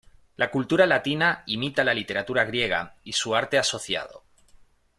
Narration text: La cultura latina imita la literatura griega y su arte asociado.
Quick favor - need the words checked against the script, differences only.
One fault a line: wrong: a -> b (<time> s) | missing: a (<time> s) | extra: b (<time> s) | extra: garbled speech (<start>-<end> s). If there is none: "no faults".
no faults